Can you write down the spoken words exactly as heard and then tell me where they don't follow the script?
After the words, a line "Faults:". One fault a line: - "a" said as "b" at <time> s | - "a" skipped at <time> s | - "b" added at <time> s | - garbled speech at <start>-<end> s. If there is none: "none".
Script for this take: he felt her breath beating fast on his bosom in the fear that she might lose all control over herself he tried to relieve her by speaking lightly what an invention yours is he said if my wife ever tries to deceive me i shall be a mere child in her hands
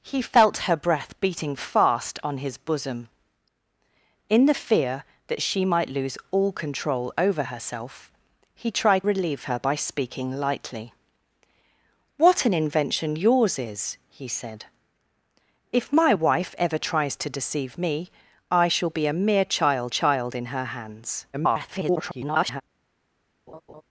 he felt her breath beating fast on his bosom in the fear that she might lose all control over herself he tried relieve her by speaking lightly what an invention yours is he said if my wife ever tries to deceive me i shall be a mere child child in her hands [garbled]
Faults:
- "to" skipped at 9.1 s
- "child" added at 19.9 s
- garbled speech at 21.3-22.6 s